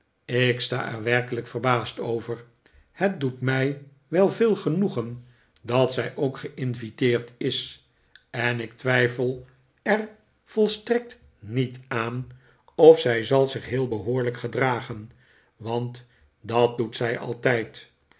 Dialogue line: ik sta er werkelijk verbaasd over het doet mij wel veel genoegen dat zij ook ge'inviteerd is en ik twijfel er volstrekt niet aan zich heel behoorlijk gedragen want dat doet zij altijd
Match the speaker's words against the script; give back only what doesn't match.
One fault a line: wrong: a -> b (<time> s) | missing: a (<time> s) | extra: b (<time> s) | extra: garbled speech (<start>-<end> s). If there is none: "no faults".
extra: of zij zal (12.8 s)